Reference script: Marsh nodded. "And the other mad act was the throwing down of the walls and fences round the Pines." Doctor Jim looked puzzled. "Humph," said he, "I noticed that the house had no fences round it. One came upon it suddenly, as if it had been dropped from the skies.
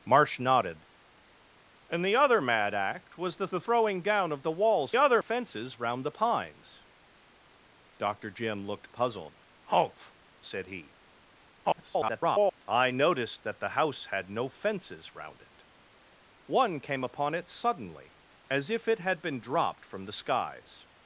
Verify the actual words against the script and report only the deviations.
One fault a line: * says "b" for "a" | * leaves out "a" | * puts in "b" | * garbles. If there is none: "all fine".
* puts in "the"
* says "other" for "and"
* garbles